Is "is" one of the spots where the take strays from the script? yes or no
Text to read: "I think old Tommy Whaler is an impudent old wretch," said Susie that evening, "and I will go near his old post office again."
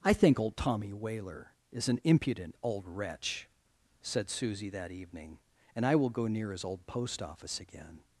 no